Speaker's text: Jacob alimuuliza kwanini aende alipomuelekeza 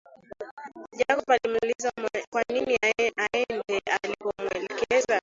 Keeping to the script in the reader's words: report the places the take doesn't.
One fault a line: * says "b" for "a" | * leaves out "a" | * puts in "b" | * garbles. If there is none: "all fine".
all fine